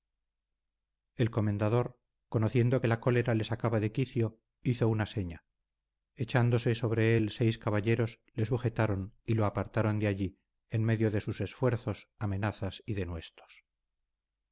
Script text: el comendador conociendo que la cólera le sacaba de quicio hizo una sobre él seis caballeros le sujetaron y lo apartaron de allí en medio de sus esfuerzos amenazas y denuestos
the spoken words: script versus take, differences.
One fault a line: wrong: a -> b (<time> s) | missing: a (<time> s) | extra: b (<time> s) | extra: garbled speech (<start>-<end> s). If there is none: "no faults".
extra: seña echándose (5.1 s)